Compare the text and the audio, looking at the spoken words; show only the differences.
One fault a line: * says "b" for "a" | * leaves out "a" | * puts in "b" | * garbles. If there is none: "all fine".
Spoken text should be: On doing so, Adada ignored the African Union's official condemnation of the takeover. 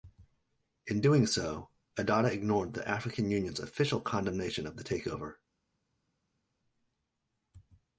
* says "In" for "On"